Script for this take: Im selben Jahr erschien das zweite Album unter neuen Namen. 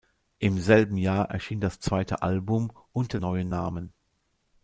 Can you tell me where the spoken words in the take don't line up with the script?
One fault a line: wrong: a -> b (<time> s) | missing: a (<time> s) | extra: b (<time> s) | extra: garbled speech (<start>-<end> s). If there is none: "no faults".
no faults